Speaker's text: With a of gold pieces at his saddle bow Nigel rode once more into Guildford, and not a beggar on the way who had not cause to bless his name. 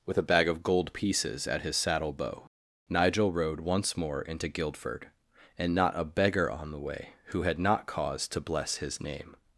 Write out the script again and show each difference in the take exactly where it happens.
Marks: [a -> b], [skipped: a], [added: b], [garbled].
With a [added: bag] of gold pieces at his saddle bow Nigel rode once more into Guildford, and not a beggar on the way who had not cause to bless his name.